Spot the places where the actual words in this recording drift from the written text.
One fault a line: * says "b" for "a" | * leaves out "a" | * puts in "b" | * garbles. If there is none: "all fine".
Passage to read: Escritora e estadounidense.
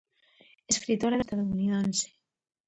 all fine